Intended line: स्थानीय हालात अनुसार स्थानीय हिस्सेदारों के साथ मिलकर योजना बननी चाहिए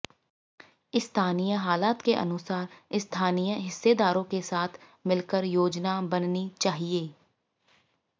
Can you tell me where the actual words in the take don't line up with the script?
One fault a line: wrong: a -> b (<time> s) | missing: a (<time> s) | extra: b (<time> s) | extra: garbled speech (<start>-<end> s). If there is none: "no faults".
extra: के (2.0 s)